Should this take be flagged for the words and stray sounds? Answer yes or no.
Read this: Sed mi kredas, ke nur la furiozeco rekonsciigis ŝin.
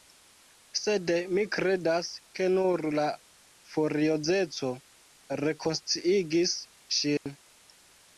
yes